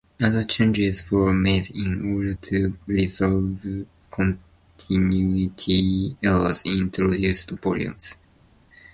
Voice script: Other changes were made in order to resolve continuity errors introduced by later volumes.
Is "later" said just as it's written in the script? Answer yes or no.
no